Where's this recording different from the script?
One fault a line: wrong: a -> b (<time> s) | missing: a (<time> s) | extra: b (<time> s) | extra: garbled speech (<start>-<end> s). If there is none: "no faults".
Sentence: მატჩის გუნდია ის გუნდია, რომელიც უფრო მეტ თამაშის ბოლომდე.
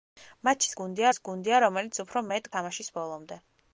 no faults